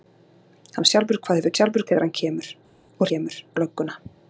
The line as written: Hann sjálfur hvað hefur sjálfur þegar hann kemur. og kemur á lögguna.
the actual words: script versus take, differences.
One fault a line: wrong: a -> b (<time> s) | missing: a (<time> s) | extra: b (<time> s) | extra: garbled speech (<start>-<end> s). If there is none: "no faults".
no faults